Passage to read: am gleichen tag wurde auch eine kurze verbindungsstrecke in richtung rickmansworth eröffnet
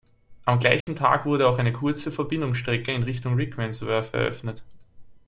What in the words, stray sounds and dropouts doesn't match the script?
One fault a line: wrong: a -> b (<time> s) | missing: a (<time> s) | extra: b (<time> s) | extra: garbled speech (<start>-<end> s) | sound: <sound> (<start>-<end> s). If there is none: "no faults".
sound: dropout (0.8-0.9 s)